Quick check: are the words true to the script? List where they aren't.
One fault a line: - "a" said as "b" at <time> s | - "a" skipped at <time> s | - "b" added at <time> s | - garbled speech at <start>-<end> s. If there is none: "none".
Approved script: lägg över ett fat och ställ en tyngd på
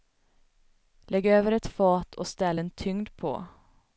none